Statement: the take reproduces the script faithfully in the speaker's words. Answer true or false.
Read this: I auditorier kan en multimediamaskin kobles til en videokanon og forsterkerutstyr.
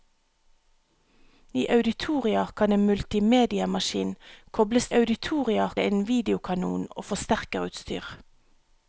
false